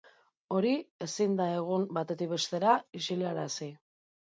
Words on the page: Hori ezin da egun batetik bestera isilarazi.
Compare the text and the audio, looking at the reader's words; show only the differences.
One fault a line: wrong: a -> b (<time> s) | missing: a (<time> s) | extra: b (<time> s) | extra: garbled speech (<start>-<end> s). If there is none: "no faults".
no faults